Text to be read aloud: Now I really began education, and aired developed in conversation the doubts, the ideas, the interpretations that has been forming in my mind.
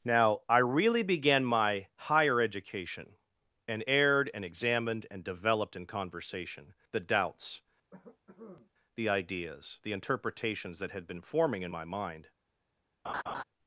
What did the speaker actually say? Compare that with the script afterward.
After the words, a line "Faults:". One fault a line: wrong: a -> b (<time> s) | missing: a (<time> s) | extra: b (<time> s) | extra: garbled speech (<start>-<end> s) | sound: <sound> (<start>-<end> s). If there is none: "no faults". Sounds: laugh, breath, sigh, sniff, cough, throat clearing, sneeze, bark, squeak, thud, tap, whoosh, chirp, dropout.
Now I really began my higher education, and aired and examined and developed in conversation the doubts, the ideas, the interpretations that had been forming in my mind.
Faults:
extra: my higher (1.4 s)
extra: and examined and (4.3 s)
sound: cough (7.9-8.7 s)
wrong: has -> had (10.9 s)
sound: laugh (13.0-13.4 s)